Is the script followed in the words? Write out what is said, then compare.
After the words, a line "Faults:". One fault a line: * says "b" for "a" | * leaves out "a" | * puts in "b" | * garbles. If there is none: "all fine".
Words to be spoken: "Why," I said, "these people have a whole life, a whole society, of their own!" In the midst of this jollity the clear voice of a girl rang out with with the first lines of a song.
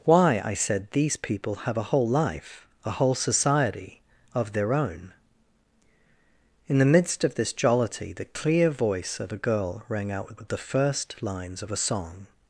"Why," I said, "these people have a whole life, a whole society, of their own!" In the midst of this jollity the clear voice of a girl rang out with with the first lines of a song.
Faults:
all fine